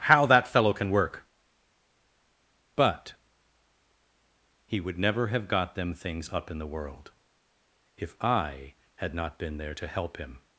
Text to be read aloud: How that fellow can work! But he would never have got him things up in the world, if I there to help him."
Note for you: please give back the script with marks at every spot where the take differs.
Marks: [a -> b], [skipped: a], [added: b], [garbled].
How that fellow can work! But he would never have got [him -> them] things up in the world, if I [added: had not been] there to help him."